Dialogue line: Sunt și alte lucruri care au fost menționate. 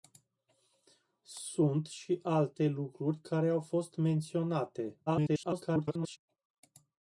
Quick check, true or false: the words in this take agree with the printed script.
false